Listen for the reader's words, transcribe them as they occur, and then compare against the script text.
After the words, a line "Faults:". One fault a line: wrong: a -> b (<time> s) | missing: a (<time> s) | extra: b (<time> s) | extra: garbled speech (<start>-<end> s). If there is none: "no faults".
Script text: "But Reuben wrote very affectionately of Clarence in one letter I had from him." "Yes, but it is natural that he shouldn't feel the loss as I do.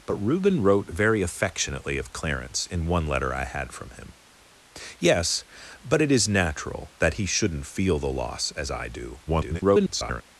"But Reuben wrote very affectionately of Clarence in one letter I had from him." "Yes, but it is natural that he shouldn't feel the loss as I do. [garbled]
Faults:
extra: garbled speech (9.3-10.2 s)